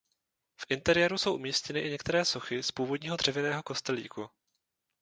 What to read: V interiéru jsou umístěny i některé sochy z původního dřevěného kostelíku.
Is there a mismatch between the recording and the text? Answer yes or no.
no